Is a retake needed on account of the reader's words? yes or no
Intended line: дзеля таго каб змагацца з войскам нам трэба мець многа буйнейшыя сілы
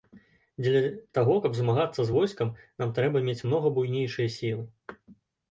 no